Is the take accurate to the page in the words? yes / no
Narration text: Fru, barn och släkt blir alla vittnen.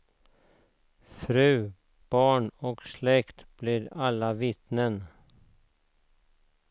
yes